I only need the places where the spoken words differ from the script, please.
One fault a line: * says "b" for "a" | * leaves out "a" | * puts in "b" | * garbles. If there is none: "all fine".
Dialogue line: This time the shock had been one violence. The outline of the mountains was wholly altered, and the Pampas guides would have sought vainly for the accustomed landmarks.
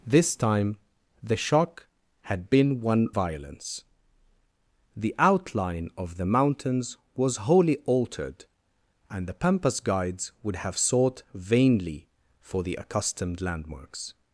all fine